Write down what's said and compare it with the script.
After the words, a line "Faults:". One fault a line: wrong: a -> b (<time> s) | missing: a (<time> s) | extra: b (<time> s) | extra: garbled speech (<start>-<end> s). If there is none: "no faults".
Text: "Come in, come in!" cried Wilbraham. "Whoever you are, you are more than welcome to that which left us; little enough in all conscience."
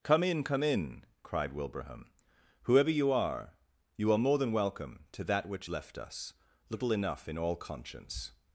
"Come in, come in!" cried Wilbraham. "Whoever you are, you are more than welcome to that which left us; little enough in all conscience."
Faults:
no faults